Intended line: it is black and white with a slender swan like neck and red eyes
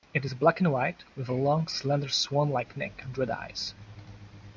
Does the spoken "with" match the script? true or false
true